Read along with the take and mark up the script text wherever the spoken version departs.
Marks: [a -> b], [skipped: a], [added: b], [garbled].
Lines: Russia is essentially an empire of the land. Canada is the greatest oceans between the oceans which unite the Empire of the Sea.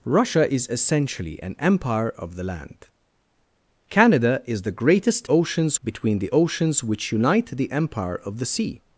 Russia is essentially an empire of the land. Canada is the greatest oceans between the oceans which unite the Empire of the Sea.